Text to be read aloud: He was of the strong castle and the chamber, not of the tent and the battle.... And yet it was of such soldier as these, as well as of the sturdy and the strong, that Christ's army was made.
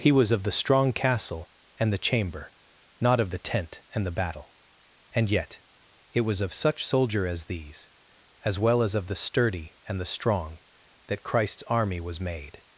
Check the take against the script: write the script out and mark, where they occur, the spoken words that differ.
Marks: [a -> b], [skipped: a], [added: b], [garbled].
He was of the strong castle and the chamber, not of the tent and the battle.... And yet it was of such soldier as these, as well as of the sturdy and the strong, that Christ's army was made.